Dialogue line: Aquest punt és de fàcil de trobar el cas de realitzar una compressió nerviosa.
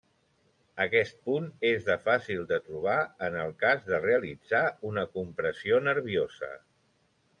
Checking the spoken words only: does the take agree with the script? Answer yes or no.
no